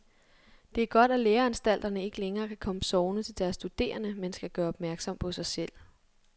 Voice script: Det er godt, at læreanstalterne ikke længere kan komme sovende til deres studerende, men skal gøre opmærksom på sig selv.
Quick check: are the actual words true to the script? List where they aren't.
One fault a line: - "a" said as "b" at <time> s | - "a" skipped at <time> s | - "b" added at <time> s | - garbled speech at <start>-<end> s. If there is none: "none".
none